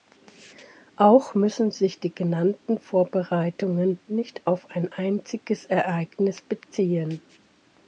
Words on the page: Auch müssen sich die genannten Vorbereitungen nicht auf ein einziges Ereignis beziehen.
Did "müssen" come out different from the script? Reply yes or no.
no